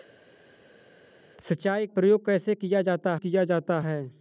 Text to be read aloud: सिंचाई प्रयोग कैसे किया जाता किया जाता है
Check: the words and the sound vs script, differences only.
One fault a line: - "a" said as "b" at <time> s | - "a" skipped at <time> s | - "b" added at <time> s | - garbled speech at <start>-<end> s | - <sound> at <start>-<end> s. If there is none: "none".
none